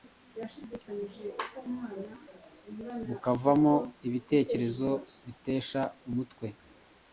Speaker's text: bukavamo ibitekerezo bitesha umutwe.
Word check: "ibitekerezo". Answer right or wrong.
right